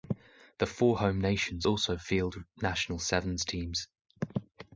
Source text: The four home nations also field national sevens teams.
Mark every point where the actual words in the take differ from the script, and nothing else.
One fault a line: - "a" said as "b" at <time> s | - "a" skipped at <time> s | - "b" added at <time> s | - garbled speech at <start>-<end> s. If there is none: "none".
none